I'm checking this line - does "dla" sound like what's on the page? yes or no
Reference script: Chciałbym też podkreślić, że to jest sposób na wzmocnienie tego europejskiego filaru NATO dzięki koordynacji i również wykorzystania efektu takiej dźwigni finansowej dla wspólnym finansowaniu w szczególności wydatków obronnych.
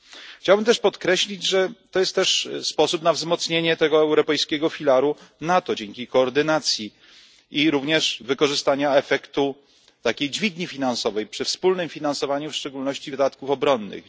no